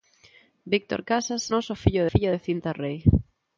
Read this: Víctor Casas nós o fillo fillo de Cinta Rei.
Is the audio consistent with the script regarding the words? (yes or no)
yes